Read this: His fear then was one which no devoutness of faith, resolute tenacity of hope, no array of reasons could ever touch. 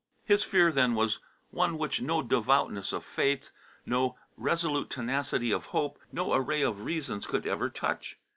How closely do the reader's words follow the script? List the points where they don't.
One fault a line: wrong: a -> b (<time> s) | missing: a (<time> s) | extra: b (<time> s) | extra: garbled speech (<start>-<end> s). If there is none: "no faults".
extra: no (3.9 s)